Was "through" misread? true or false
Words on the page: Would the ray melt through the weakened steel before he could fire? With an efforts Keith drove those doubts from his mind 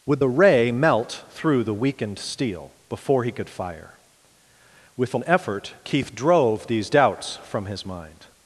false